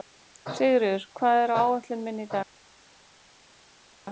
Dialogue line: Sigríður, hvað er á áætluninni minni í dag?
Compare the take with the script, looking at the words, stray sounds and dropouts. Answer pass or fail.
pass